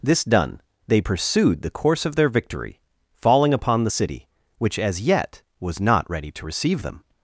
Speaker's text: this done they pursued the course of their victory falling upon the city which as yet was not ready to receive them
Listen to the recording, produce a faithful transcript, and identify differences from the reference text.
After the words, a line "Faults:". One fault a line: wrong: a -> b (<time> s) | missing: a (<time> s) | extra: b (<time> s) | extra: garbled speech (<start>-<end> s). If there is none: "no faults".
this done they pursued the course of their victory falling upon the city which as yet was not ready to receive them
Faults:
no faults